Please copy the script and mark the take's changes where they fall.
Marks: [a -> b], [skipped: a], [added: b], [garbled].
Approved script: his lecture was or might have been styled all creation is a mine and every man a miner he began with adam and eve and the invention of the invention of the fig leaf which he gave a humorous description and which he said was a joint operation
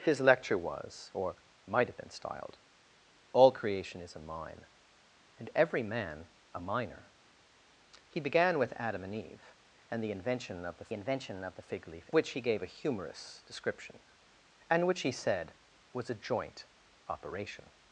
his lecture was or might have been styled all creation is a mine and every man a miner he began with adam and eve and the invention of the invention of the fig leaf which he gave a humorous description and which he said was a joint operation